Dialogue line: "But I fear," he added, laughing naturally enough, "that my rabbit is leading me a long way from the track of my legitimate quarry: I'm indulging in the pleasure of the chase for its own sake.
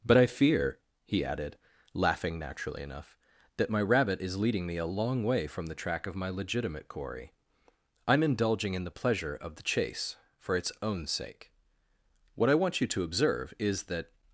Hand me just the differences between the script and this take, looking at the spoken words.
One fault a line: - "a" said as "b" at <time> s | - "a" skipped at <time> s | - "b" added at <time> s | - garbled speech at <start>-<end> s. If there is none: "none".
- "What I want you to observe is that" added at 12.3 s